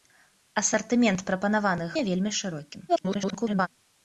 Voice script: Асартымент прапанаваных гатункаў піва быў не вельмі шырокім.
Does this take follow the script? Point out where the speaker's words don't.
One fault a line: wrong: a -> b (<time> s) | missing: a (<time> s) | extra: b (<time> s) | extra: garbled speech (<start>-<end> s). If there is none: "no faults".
missing: гатункаў піва быў (1.9 s)
extra: garbled speech (2.9-3.7 s)